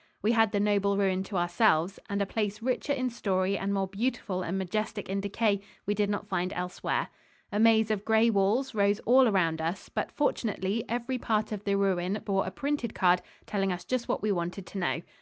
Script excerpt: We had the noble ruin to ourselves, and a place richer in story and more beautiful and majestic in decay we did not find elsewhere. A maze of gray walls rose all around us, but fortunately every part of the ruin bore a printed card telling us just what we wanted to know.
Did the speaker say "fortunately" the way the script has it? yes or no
yes